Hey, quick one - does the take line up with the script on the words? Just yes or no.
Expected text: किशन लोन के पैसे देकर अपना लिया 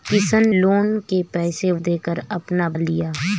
yes